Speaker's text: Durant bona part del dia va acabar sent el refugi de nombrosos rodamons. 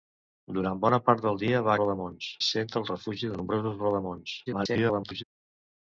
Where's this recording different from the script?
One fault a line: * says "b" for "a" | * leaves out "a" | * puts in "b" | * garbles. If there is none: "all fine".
* says "rodamons" for "acabar"
* garbles